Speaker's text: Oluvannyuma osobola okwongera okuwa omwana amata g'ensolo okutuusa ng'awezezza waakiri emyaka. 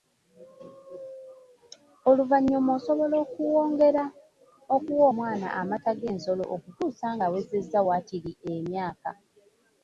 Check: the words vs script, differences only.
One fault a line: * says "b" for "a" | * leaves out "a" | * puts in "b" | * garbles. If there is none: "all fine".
all fine